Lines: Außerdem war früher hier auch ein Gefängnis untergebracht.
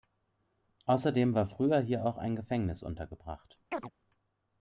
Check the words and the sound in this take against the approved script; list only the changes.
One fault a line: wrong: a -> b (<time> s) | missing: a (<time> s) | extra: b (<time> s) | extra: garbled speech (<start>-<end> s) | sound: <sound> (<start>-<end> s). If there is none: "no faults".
sound: chirp (3.7-3.9 s)